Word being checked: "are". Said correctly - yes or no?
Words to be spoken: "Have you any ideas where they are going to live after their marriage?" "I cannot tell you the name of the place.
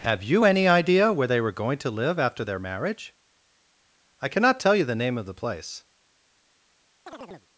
no